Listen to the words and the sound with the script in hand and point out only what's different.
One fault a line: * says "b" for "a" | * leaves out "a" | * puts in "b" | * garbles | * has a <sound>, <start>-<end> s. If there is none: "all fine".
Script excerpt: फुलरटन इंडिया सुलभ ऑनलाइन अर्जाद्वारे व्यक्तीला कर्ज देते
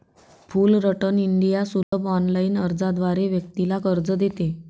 * has a dropout, 1.8-1.9 s